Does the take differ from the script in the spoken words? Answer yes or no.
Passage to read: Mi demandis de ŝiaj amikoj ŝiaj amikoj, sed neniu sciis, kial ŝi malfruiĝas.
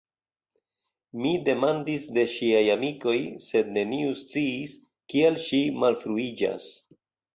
yes